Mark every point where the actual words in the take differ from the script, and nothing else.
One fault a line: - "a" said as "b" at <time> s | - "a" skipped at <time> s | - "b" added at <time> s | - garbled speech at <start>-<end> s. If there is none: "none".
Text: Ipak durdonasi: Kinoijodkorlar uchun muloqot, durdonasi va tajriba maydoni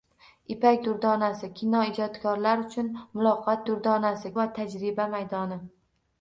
none